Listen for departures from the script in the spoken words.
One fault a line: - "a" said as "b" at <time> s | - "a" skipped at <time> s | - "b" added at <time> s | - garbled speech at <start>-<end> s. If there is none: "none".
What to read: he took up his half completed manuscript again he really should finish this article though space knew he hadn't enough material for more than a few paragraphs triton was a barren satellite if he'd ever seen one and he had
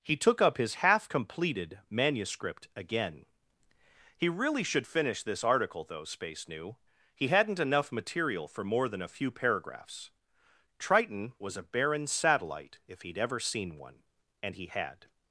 none